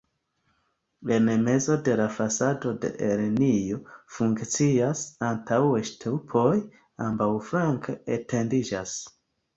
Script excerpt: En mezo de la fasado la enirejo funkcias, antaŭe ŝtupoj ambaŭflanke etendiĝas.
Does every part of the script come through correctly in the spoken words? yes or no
yes